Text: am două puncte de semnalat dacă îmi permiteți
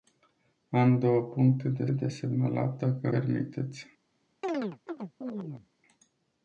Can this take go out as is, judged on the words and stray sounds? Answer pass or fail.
fail